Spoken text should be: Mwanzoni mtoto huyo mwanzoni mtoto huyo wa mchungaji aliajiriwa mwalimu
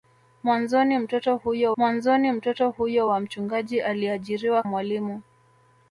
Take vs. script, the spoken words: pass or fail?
pass